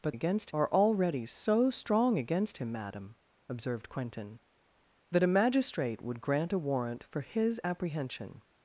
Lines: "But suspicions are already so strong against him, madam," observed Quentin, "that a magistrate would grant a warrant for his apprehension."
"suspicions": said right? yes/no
no